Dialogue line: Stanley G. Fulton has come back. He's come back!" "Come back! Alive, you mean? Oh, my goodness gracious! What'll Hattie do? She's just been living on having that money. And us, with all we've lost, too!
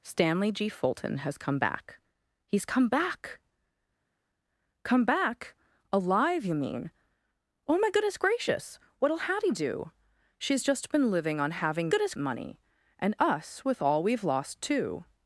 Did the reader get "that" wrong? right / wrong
wrong